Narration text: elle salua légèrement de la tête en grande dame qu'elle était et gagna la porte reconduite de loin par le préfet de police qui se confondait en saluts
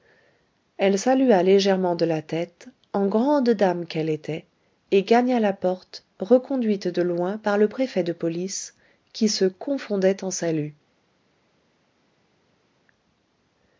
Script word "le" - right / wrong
right